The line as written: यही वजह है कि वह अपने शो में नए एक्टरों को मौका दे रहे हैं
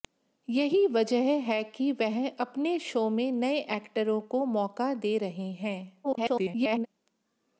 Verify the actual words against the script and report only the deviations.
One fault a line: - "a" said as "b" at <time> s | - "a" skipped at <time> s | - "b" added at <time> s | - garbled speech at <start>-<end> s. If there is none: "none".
- garbled speech at 6.0-6.9 s